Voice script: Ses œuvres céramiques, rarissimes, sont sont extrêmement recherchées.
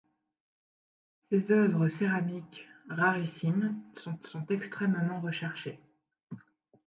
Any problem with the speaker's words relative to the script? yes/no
no